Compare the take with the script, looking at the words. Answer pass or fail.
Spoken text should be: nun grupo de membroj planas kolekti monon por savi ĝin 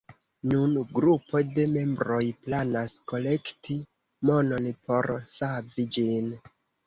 pass